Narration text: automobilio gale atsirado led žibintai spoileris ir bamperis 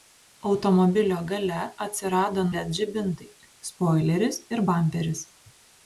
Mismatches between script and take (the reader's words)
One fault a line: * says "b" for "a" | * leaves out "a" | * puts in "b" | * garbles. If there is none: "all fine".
all fine